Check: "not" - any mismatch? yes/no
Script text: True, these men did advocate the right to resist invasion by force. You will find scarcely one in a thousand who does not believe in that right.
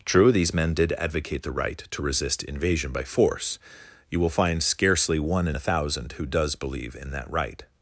yes